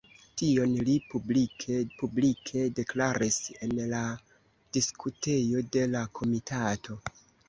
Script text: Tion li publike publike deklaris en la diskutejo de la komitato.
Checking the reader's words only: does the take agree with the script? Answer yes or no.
yes